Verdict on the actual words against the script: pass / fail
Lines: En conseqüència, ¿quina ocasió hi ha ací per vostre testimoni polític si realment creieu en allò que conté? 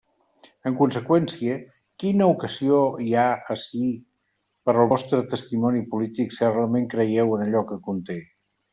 fail